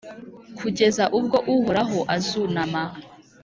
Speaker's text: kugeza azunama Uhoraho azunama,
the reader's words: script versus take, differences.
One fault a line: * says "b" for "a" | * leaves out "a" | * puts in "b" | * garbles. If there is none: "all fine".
* says "ubwo" for "azunama"